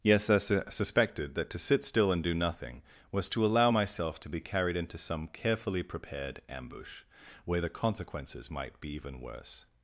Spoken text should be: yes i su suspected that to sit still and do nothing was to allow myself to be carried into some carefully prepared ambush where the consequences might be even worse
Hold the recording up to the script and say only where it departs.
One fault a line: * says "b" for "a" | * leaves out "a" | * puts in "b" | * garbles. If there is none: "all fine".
all fine